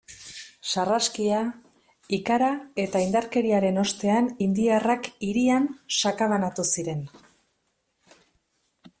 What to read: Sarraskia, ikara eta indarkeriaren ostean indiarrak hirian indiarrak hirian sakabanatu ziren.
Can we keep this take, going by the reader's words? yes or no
no